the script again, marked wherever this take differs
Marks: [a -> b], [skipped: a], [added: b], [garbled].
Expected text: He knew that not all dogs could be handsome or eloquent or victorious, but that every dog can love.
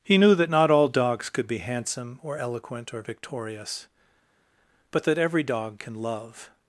He knew that not all dogs could be handsome or eloquent or victorious, but that every dog can love.